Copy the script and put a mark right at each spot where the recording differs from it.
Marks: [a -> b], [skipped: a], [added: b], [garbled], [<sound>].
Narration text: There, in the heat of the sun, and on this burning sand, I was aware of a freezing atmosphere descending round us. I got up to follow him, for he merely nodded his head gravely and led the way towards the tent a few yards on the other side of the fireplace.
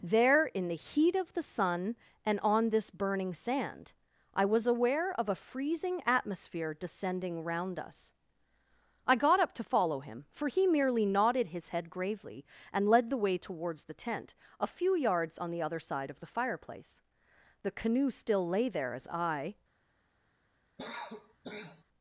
There, in the heat of the sun, and on this burning sand, I was aware of a freezing atmosphere descending round us. I got up to follow him, for he merely nodded his head gravely and led the way towards the tent a few yards on the other side of the fireplace. [added: The canoe still lay there as I] [cough]